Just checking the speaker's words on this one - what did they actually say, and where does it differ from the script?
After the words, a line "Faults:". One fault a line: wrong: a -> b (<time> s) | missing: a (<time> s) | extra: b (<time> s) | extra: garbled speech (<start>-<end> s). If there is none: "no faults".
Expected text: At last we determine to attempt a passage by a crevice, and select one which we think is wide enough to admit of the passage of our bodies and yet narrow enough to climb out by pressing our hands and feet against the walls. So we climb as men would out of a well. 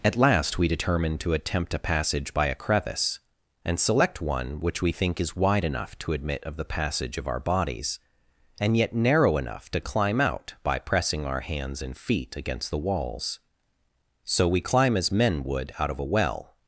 At last we determine to attempt a passage by a crevice, and select one which we think is wide enough to admit of the passage of our bodies and yet narrow enough to climb out by pressing our hands and feet against the walls. So we climb as men would out of a well.
Faults:
no faults